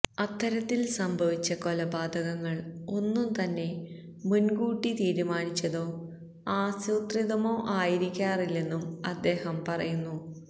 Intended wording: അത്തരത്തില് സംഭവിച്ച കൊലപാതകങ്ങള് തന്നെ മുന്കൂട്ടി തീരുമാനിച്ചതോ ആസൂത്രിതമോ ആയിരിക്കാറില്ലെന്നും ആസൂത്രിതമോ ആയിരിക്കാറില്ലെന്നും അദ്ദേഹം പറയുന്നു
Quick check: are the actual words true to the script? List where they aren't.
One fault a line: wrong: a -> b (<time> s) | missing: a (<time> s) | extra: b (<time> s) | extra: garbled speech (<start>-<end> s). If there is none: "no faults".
extra: ഒന്നും (2.9 s)
missing: ആസൂത്രിതമോ ആയിരിക്കാറില്ലെന്നും (8.8 s)